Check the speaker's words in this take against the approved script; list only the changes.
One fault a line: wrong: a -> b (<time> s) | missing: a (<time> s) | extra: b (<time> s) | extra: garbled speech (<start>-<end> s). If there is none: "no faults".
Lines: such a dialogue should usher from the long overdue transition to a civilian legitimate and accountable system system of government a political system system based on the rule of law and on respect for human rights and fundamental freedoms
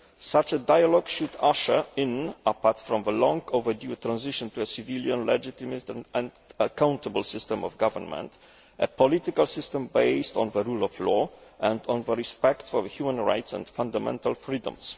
extra: in apart (1.9 s)
missing: system (7.6 s)
missing: system (9.8 s)